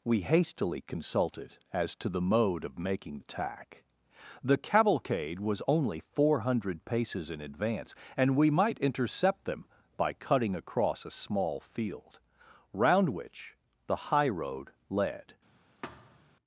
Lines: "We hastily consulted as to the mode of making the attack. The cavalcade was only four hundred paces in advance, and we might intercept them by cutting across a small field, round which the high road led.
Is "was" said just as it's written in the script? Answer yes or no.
yes